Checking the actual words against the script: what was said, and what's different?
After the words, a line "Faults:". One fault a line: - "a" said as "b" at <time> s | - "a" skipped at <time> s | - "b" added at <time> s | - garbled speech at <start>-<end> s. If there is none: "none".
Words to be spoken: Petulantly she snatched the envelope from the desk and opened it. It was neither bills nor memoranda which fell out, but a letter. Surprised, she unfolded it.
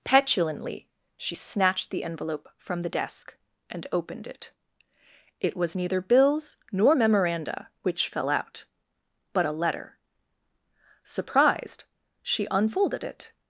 Petulantly she snatched the envelope from the desk and opened it. It was neither bills nor memoranda which fell out, but a letter. Surprised, she unfolded it.
Faults:
none